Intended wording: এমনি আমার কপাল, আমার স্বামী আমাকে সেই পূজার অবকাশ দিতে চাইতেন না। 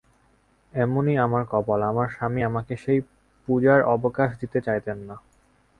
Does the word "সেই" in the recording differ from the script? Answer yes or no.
no